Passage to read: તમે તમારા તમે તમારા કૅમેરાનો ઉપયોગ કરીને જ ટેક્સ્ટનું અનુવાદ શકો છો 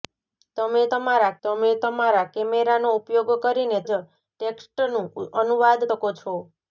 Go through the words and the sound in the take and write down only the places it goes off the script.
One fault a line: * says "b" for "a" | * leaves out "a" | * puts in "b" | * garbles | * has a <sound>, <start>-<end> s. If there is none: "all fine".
all fine